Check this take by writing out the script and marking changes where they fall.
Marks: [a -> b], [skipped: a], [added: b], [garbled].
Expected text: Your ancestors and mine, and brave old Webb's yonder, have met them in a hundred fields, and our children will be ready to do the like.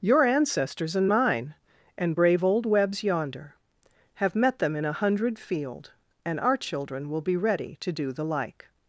Your ancestors and mine, and brave old Webb's yonder, have met them in a hundred [fields, -> field] and our children will be ready to do the like.